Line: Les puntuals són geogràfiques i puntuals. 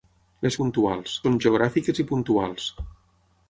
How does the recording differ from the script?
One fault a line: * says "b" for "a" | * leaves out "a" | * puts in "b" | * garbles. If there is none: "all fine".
all fine